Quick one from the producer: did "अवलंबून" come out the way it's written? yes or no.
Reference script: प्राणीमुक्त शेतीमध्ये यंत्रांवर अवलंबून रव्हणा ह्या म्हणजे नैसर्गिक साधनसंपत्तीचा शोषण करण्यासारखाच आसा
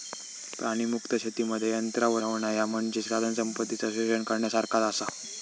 no